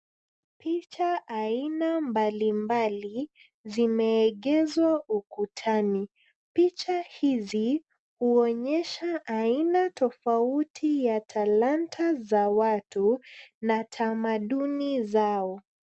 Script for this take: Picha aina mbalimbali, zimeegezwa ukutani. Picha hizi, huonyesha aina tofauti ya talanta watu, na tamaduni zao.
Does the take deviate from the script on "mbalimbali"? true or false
false